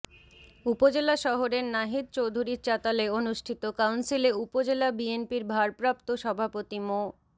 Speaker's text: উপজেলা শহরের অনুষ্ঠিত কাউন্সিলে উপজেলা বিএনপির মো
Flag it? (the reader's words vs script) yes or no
yes